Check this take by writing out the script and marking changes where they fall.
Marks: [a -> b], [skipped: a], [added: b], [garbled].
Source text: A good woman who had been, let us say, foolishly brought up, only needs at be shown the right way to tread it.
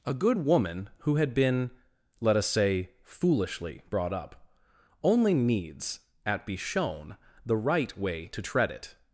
A good woman who had been, let us say, foolishly brought up, only needs at be shown the right way to tread it.